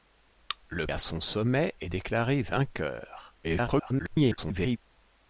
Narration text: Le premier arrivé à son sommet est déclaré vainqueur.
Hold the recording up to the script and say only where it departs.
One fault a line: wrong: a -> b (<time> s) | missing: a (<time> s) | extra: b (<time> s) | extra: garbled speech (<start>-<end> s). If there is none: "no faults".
missing: premier arrivé (0.9 s)
extra: garbled speech (3.4-4.8 s)